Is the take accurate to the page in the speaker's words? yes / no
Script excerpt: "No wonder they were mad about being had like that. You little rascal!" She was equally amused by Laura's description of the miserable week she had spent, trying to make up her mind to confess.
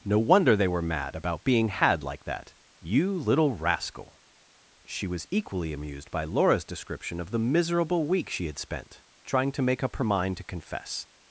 yes